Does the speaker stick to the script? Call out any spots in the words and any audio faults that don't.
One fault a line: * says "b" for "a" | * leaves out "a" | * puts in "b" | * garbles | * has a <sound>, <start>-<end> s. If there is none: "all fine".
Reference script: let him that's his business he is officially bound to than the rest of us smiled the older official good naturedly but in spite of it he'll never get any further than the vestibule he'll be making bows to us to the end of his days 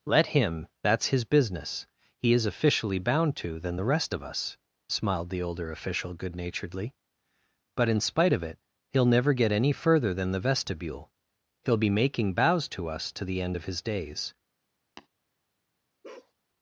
* has a tap, 15.0-15.1 s
* has a bark, 16.0-16.3 s